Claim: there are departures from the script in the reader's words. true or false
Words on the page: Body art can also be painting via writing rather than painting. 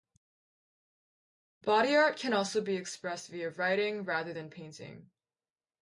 true